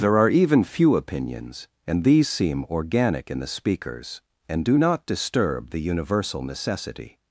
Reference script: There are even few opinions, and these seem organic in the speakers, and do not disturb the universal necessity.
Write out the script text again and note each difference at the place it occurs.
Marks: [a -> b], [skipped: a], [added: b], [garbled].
There are even few opinions, and these seem organic in the speakers, and do not disturb the universal necessity.